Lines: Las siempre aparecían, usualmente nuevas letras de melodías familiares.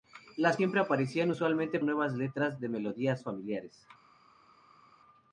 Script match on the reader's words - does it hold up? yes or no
yes